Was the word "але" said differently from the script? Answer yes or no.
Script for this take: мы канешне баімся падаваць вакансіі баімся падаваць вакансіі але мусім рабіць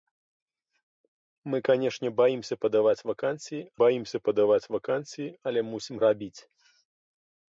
no